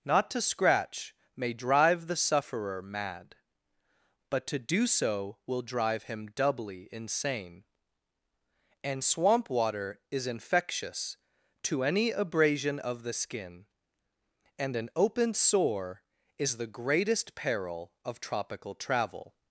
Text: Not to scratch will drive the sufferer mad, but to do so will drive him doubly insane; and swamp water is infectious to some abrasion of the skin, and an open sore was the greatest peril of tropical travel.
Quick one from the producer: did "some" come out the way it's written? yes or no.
no